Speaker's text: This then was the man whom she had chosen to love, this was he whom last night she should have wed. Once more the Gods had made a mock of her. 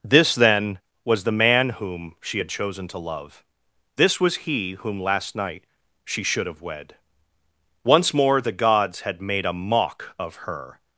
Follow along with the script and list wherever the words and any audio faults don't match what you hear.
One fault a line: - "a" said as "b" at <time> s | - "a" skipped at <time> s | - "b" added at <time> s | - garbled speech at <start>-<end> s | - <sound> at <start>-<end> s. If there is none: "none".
none